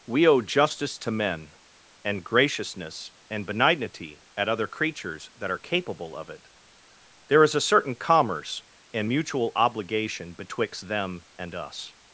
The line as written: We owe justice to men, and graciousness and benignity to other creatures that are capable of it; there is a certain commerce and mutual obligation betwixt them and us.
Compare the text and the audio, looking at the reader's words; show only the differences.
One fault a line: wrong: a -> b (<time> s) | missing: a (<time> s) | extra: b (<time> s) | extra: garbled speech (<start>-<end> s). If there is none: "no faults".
wrong: to -> at (4.3 s)